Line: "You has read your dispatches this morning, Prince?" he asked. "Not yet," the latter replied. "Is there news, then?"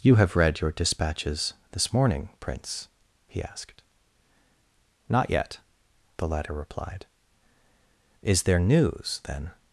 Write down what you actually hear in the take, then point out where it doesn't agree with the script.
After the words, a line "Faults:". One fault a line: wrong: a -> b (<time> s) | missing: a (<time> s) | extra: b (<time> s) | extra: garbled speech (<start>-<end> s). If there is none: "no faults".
"You have read your dispatches this morning, Prince?" he asked. "Not yet," the latter replied. "Is there news, then?"
Faults:
wrong: has -> have (0.1 s)